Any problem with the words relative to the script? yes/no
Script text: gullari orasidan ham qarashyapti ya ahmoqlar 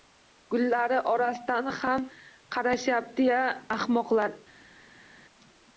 no